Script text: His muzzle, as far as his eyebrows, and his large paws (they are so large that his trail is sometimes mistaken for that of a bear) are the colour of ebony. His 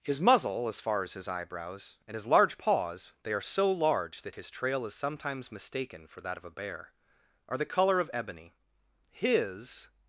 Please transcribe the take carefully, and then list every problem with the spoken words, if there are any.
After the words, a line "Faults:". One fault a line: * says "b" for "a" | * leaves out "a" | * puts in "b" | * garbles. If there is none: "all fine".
His muzzle, as far as his eyebrows, and his large paws (they are so large that his trail is sometimes mistaken for that of a bear) are the colour of ebony. His
Faults:
all fine